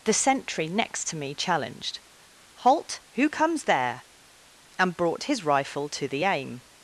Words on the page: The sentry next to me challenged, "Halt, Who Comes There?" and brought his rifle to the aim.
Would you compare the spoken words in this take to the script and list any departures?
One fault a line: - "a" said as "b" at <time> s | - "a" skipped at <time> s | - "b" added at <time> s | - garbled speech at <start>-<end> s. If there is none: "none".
none